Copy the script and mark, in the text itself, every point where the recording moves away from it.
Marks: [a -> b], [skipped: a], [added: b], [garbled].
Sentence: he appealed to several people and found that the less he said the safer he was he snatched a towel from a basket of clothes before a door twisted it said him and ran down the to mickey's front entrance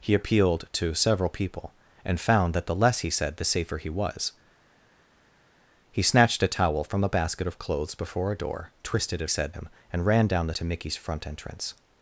he appealed to several people and found that the less he said the safer he was he snatched a towel from a basket of clothes before a door twisted it said him and ran down the to mickey's front entrance